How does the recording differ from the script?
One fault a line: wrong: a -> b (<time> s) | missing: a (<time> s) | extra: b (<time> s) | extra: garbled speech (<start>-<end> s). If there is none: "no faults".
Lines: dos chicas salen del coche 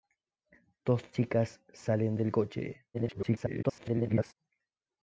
extra: garbled speech (2.9-4.3 s)